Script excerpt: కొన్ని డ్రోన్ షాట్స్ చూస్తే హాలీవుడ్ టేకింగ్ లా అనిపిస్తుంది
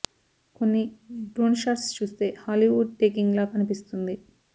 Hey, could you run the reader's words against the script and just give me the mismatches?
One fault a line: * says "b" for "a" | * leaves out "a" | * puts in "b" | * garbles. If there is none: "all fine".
all fine